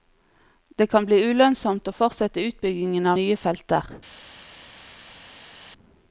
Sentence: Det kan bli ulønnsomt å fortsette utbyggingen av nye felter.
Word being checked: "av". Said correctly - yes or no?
no